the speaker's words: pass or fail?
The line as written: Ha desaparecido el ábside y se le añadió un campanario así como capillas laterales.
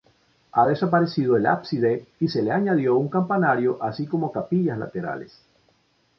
pass